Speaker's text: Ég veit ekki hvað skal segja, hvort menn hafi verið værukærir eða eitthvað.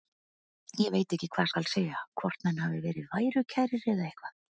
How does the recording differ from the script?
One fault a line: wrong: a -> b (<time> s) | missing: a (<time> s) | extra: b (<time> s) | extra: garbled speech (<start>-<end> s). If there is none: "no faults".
no faults